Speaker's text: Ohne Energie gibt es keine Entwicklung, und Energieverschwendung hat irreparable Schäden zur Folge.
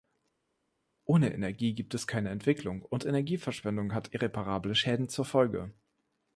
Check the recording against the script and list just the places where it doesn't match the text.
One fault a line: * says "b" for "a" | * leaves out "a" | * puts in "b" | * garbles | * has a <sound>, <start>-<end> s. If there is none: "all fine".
all fine